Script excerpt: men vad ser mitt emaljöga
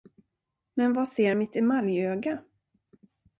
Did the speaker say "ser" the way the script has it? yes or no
yes